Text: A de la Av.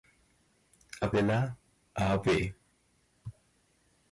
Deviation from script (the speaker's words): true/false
false